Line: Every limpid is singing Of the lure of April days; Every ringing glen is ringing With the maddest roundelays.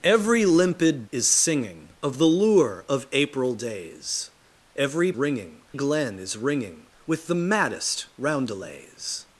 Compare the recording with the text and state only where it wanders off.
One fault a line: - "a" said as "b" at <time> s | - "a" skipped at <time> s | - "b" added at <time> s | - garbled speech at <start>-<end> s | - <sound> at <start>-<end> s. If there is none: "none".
none